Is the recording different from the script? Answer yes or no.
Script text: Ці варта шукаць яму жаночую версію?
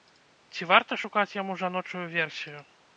no